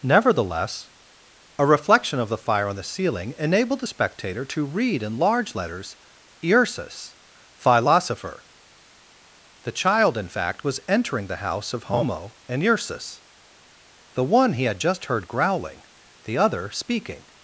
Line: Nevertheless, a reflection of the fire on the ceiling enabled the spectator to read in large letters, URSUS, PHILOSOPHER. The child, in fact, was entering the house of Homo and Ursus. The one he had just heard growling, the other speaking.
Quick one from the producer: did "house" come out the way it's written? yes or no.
yes